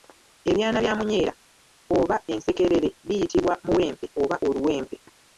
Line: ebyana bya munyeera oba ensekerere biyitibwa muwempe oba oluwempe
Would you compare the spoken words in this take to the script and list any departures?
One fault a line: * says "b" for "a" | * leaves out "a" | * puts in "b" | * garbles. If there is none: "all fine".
all fine